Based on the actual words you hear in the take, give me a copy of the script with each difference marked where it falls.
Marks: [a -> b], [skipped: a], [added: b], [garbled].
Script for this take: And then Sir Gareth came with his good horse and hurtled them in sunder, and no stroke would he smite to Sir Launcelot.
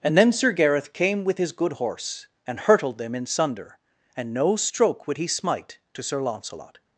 And then Sir Gareth came with his good horse and hurtled them in sunder, and no stroke would he smite to Sir Launcelot.